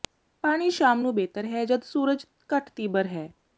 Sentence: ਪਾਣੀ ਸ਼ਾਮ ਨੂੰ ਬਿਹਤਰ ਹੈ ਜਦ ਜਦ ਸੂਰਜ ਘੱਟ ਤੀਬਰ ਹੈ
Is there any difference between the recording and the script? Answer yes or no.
yes